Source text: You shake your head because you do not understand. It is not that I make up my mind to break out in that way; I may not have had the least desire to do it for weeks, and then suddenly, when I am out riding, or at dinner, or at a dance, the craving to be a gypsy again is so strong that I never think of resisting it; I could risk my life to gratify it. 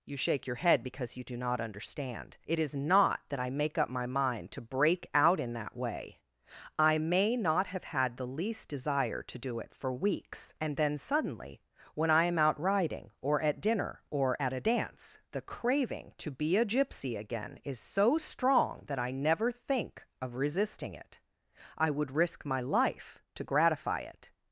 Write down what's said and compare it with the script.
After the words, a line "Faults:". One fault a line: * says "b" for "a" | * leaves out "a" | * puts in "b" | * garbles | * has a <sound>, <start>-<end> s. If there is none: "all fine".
You shake your head because you do not understand. It is not that I make up my mind to break out in that way; I may not have had the least desire to do it for weeks, and then suddenly, when I am out riding, or at dinner, or at a dance, the craving to be a gypsy again is so strong that I never think of resisting it; I would risk my life to gratify it.
Faults:
* says "would" for "could"